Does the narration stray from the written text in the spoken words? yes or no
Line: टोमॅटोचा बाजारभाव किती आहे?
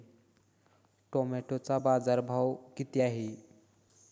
no